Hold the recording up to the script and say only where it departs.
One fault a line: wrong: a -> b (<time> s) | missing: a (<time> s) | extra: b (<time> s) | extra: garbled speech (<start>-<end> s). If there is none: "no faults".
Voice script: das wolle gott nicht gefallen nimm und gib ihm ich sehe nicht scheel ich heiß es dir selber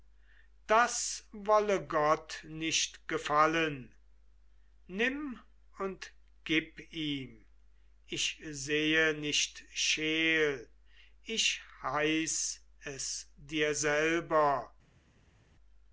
no faults